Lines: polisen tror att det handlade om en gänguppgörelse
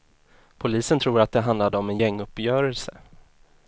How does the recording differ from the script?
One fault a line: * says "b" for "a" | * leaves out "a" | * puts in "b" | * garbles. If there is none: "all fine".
all fine